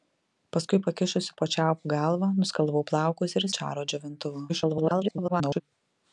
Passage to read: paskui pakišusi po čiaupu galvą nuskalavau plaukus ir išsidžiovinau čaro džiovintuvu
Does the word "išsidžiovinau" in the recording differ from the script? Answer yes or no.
yes